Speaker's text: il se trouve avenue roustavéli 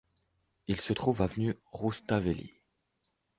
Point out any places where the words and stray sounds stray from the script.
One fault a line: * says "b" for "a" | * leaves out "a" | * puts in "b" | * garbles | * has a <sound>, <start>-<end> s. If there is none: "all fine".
all fine